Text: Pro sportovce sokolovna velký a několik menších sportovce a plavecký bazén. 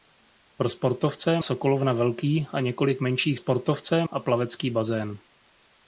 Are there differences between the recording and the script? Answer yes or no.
no